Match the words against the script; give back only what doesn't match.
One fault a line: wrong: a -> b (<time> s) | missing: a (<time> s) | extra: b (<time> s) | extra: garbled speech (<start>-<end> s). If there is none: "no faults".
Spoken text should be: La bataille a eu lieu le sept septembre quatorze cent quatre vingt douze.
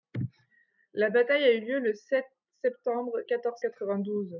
missing: cent (3.6 s)